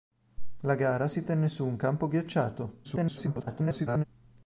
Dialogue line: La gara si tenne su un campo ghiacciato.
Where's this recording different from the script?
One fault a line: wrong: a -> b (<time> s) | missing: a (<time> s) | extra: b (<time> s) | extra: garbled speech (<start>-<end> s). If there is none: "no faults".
extra: garbled speech (2.8-4.0 s)